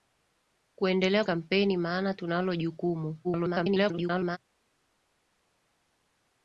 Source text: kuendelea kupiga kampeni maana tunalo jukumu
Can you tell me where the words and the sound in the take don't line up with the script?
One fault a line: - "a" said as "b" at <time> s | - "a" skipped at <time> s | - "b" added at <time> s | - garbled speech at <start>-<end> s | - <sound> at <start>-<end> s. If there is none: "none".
- "kupiga" skipped at 1.2 s
- garbled speech at 3.2-4.4 s